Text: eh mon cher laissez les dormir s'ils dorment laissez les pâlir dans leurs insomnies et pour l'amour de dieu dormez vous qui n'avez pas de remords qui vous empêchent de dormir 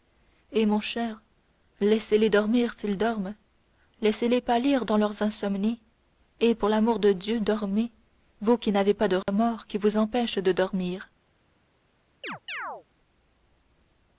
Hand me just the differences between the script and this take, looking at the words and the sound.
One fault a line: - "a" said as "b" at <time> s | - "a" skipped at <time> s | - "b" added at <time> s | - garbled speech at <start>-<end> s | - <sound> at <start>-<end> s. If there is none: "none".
- dropout at 9.2-9.3 s
- chirp at 12.2-12.8 s